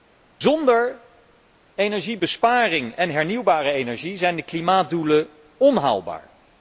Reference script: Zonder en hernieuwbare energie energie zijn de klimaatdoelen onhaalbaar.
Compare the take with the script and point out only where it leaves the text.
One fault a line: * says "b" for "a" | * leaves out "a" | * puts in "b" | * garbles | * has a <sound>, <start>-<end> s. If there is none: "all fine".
* puts in "energiebesparing"
* leaves out "energie"